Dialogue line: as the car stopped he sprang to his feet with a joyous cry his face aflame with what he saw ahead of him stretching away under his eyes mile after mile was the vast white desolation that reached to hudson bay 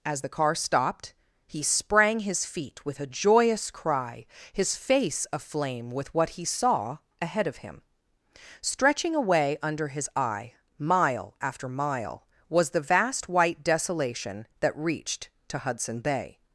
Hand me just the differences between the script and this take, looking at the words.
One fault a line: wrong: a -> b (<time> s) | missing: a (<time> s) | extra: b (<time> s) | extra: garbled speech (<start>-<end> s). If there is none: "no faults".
missing: to (2.2 s)
wrong: eyes -> eye (10.1 s)